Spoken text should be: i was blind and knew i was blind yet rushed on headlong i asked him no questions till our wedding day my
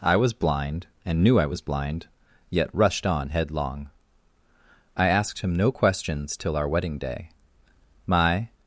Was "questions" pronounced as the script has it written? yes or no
yes